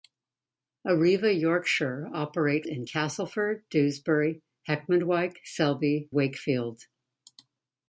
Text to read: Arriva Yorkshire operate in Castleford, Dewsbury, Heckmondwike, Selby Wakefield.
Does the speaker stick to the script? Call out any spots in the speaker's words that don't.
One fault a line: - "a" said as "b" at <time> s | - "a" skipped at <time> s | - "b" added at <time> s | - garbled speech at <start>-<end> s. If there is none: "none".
none